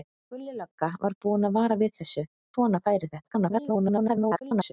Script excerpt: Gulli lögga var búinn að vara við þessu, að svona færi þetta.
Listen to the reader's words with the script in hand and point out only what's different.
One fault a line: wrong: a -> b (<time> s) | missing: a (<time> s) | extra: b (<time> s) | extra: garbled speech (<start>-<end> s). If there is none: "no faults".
missing: að (2.3 s)
extra: garbled speech (3.3-4.7 s)